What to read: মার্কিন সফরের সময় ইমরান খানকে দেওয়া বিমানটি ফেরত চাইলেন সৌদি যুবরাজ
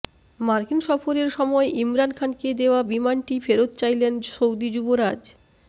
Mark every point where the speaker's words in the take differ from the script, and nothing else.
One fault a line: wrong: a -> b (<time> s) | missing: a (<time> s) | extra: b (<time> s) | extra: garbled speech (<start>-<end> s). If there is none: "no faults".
no faults